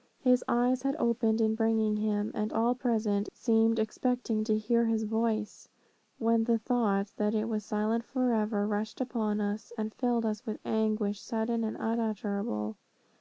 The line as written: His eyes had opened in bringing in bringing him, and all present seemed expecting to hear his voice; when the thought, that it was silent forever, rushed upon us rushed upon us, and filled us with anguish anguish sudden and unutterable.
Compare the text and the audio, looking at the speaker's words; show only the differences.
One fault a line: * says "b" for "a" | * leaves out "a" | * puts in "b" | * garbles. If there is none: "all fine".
* leaves out "in bringing"
* leaves out "rushed upon us"
* leaves out "anguish"